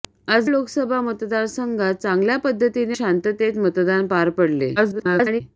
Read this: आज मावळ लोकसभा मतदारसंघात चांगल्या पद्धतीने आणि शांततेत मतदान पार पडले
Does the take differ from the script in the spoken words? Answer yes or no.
yes